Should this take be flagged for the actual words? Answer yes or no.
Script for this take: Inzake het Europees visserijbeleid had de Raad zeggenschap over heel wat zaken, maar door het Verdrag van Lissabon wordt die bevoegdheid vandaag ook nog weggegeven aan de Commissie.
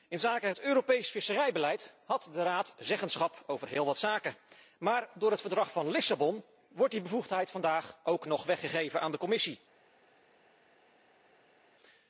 no